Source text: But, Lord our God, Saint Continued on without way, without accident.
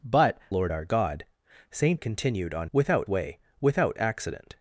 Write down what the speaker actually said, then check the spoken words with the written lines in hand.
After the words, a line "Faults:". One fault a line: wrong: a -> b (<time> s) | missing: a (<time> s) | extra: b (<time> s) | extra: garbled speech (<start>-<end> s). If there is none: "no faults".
But, Lord our God, Saint Continued on without way, without accident.
Faults:
no faults